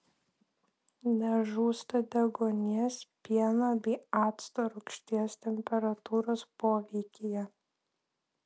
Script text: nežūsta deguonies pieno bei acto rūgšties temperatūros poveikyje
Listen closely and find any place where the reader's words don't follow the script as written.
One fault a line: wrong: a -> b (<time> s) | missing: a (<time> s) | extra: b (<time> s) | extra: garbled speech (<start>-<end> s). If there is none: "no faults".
no faults